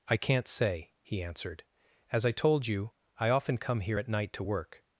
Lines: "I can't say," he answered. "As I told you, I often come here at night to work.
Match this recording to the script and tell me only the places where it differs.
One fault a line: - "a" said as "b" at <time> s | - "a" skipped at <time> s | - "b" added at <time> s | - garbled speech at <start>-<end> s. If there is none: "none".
none